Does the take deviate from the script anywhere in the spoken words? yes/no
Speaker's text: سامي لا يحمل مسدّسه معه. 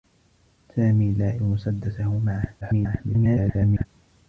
yes